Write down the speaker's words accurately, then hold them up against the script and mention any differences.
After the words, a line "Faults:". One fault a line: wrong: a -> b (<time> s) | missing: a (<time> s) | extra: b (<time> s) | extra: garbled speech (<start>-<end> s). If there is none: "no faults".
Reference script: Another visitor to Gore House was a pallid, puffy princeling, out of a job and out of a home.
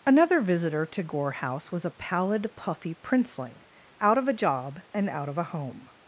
Another visitor to Gore House was a pallid, puffy princeling, out of a job and out of a home.
Faults:
no faults